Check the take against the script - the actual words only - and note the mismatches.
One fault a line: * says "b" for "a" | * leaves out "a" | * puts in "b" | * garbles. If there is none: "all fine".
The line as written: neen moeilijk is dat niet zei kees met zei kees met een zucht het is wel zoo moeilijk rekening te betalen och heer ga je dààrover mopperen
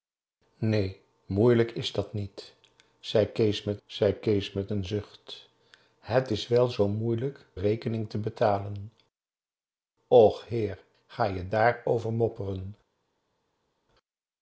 all fine